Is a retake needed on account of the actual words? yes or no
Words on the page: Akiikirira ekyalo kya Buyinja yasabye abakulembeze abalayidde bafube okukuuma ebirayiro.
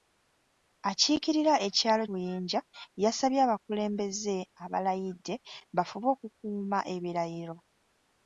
yes